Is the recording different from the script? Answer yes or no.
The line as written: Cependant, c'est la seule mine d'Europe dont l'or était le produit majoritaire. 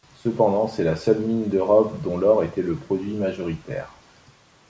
no